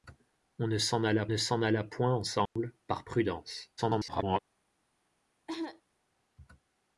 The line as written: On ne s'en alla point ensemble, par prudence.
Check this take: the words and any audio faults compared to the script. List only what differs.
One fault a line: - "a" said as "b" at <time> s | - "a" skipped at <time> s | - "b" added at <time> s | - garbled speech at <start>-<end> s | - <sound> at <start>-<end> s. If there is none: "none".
- "ne s'en alla" added at 1.3 s
- dropout at 2.5-2.6 s
- garbled speech at 3.8-4.4 s
- cough at 5.5-5.8 s